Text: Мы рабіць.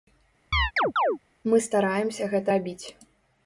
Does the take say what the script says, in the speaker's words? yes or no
no